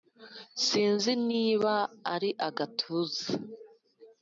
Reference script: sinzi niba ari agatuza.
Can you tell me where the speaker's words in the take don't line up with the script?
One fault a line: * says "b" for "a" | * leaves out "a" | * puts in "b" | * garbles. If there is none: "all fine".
all fine